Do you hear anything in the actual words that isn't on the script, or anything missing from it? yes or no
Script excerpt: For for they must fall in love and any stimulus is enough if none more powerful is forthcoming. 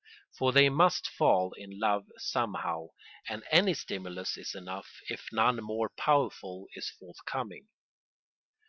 yes